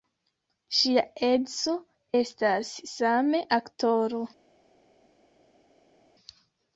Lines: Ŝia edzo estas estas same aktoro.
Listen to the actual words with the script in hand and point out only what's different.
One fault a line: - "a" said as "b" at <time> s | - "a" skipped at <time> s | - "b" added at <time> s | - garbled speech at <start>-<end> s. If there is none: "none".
- "estas" skipped at 2.7 s